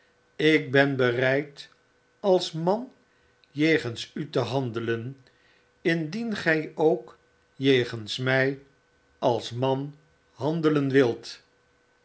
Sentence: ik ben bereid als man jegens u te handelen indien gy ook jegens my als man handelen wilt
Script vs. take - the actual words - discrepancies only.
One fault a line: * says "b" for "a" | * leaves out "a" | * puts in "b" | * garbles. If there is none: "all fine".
all fine